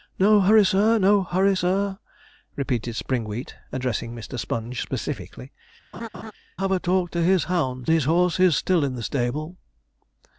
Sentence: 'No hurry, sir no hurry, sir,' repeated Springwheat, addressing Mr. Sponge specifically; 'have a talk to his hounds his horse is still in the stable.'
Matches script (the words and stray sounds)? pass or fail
fail